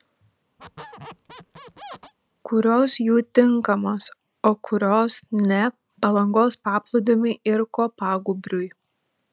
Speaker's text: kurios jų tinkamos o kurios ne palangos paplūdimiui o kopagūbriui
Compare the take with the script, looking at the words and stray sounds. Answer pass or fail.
fail